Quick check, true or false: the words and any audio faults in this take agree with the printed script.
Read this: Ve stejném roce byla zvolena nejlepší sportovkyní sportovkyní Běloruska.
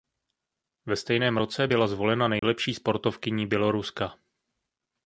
false